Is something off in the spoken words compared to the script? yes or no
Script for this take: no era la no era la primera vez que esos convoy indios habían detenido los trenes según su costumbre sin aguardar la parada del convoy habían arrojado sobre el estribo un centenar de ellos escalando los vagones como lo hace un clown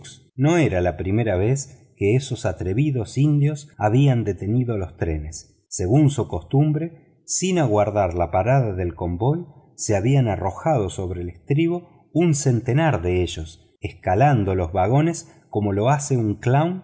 yes